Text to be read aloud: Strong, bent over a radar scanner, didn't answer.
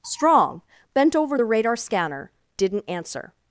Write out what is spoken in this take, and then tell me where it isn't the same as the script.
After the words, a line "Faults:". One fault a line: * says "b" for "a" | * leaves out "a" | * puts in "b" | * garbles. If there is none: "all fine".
Strong, bent over the radar scanner, didn't answer.
Faults:
* says "the" for "a"